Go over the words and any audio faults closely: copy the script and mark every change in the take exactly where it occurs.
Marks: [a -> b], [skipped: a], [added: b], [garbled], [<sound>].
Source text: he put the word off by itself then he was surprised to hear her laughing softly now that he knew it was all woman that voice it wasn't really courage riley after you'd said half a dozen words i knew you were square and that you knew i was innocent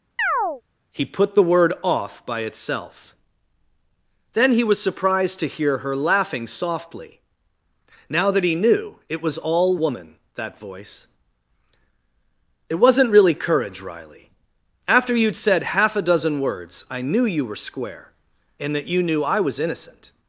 [chirp] he put the word off by itself then he was surprised to hear her laughing softly now that he knew it was all woman that voice it wasn't really courage riley after you'd said half a dozen words i knew you were square and that you knew i was innocent